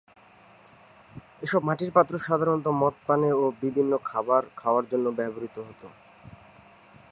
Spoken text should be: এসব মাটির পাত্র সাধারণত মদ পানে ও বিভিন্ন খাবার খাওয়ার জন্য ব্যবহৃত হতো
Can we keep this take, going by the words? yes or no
yes